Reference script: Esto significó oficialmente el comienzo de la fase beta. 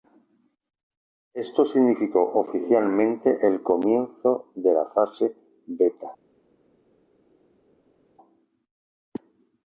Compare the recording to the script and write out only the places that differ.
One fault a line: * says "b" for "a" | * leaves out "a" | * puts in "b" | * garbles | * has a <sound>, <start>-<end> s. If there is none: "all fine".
all fine